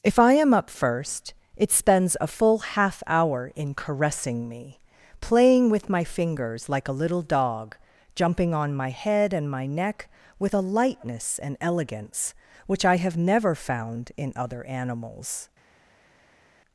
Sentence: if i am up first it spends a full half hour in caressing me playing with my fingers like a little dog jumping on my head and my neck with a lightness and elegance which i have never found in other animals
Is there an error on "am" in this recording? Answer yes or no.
no